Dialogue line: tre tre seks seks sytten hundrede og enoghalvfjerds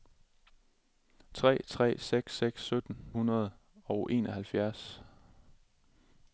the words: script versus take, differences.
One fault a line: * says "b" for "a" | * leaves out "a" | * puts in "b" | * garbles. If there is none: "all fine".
all fine